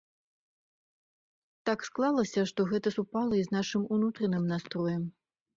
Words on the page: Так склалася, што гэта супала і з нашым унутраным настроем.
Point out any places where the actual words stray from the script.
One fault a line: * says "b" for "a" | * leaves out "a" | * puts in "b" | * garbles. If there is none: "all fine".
all fine